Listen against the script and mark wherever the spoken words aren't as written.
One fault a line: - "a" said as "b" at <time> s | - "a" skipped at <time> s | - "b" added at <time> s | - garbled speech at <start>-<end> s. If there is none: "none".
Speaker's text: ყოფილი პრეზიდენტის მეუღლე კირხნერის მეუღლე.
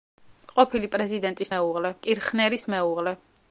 none